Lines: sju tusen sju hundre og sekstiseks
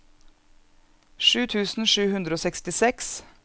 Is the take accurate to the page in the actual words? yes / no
yes